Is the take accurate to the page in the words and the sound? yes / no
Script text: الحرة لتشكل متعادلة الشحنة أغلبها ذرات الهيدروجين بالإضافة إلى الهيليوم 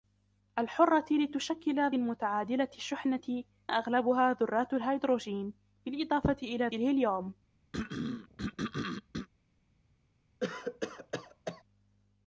no